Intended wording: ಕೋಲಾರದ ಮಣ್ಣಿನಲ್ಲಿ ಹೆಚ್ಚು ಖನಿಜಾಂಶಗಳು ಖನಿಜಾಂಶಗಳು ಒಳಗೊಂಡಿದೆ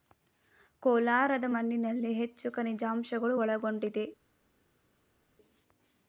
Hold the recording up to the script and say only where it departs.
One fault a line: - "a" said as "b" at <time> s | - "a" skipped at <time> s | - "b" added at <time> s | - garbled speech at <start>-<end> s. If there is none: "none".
- "ಖನಿಜಾಂಶಗಳು" skipped at 3.4 s